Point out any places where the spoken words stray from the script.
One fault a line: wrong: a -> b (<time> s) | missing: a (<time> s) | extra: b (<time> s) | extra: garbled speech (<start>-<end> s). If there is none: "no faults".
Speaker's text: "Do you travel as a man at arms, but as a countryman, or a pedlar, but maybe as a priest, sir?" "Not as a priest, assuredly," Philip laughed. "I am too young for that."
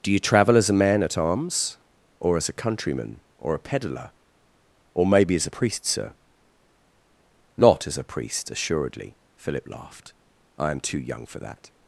wrong: but -> or (2.2 s)
wrong: but -> or (4.9 s)